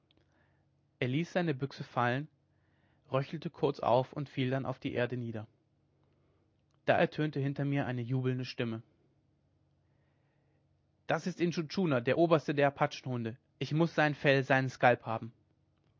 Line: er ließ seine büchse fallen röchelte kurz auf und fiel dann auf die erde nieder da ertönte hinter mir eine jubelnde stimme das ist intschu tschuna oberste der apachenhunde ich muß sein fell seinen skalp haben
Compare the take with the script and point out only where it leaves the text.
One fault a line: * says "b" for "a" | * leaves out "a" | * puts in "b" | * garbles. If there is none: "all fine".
* puts in "der"